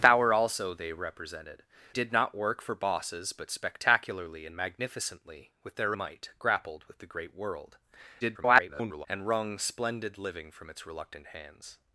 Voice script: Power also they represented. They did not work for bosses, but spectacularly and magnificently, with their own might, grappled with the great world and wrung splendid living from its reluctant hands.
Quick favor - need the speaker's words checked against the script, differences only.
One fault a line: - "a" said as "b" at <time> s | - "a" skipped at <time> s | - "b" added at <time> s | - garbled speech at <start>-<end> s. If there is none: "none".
- "They" skipped at 1.6 s
- "own" skipped at 6.0 s
- garbled speech at 8.2-9.1 s